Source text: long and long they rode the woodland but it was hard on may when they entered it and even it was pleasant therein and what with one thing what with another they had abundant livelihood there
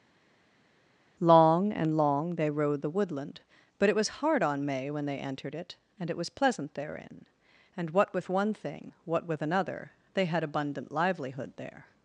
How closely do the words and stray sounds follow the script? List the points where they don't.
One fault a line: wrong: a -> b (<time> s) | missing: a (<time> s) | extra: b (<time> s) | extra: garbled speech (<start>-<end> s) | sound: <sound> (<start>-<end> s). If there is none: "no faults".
missing: even (6.1 s)